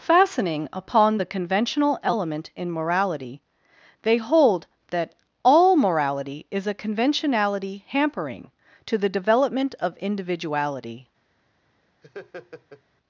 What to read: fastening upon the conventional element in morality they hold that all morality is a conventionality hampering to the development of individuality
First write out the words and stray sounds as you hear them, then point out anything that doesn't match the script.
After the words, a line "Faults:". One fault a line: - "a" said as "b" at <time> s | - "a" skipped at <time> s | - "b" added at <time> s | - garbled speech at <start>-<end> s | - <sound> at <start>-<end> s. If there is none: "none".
fastening upon the conventional element in morality they hold that all morality is a conventionality hampering to the development of individuality
Faults:
- laugh at 12.0-12.8 s